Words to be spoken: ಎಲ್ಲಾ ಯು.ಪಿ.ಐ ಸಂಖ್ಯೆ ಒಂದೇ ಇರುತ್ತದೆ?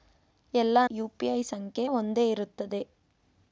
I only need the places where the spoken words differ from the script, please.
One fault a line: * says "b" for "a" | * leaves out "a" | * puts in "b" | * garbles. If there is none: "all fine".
all fine